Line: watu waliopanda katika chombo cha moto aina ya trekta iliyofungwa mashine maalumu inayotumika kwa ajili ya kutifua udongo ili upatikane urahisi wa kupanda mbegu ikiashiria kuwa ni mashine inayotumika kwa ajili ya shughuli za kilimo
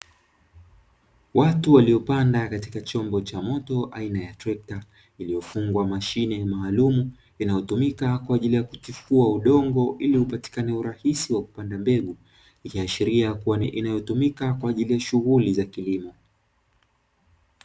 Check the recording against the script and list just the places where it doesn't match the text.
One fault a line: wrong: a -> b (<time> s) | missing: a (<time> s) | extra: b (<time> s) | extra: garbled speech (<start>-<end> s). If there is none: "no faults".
missing: mashine (13.7 s)